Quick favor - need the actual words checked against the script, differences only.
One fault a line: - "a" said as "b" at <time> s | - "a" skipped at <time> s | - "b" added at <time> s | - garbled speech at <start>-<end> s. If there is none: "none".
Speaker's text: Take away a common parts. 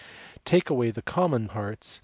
- "a" said as "the" at 0.9 s